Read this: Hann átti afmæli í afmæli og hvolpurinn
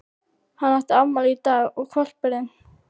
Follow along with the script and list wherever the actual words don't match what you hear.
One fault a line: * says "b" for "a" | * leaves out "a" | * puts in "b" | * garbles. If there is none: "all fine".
* says "dag" for "afmæli"